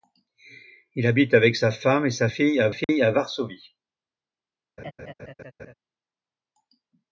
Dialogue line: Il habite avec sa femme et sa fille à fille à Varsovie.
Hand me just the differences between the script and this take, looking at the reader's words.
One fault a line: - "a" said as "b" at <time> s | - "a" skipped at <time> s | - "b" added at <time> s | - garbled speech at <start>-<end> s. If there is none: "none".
none